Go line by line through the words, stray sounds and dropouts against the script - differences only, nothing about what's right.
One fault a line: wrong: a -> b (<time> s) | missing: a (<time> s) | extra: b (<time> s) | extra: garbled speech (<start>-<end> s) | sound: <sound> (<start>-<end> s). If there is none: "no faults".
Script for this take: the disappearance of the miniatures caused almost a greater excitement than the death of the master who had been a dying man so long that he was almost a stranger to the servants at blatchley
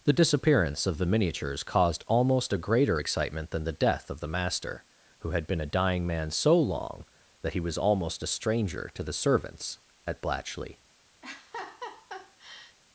sound: laugh (11.2-12.8 s)